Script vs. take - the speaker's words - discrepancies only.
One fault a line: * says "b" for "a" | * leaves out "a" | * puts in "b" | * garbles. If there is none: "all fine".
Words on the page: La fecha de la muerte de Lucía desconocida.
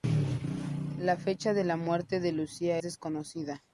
all fine